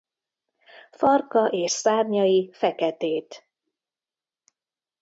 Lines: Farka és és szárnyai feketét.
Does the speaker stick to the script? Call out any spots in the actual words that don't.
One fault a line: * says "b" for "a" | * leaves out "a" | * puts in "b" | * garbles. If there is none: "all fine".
* leaves out "és"